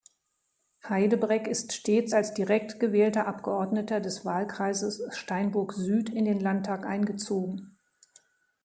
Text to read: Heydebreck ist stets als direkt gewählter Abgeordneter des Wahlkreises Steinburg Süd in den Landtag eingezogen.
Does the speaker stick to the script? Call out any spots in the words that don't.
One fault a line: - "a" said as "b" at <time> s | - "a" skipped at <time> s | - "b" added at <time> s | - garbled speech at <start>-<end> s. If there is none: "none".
none